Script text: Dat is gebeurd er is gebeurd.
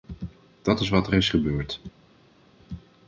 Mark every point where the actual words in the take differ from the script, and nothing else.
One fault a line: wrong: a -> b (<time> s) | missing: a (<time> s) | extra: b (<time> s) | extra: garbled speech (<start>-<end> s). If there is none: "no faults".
wrong: gebeurd -> wat (0.9 s)